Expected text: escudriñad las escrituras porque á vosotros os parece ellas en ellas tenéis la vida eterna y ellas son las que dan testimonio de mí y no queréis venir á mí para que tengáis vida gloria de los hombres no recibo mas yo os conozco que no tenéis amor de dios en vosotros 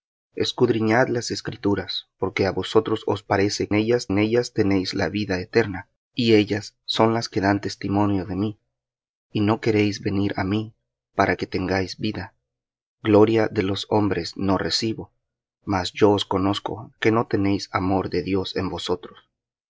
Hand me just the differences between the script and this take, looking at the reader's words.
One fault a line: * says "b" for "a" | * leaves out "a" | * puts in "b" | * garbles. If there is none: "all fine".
all fine